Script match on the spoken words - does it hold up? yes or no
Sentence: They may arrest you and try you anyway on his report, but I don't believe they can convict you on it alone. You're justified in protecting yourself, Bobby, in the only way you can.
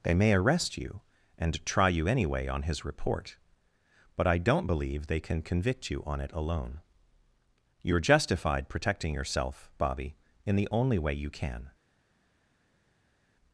no